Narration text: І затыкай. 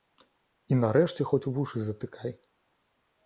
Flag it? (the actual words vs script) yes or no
yes